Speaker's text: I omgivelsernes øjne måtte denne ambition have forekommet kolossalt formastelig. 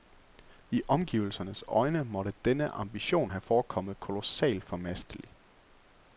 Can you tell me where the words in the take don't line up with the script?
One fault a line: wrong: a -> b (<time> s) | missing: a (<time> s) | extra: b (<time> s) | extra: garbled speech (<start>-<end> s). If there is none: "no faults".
no faults